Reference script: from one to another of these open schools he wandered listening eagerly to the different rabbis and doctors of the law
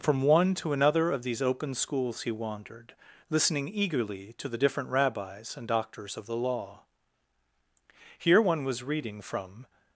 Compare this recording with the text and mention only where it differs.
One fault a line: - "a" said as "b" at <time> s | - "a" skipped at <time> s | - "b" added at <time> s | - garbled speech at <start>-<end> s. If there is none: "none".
- "here one was reading from" added at 8.2 s